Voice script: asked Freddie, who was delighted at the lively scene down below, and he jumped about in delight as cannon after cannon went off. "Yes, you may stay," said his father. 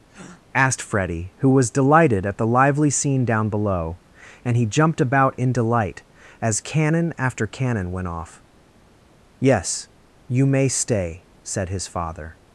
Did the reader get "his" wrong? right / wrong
right